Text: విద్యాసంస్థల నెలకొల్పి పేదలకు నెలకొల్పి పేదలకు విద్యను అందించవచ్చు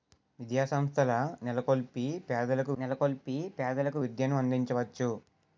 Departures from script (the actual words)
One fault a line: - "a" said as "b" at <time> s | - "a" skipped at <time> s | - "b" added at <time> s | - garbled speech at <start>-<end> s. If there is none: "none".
none